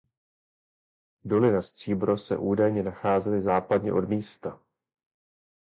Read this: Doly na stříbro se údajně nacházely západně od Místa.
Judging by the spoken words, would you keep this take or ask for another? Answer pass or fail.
pass